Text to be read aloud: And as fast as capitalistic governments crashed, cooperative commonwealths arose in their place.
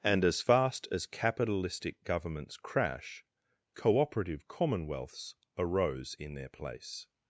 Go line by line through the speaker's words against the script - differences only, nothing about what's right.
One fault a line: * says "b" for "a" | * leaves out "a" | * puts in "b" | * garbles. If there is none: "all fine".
* says "crash" for "crashed"